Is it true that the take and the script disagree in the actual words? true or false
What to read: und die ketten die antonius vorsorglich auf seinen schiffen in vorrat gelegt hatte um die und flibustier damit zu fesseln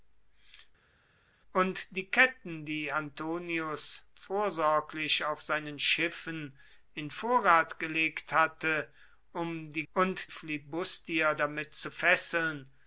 false